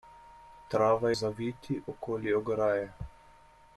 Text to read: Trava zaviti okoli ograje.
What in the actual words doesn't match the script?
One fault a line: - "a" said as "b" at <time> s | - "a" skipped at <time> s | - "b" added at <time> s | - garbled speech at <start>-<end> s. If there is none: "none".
none